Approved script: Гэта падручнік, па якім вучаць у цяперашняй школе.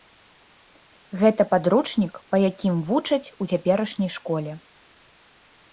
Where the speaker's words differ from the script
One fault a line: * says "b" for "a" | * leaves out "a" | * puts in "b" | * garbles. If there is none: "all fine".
all fine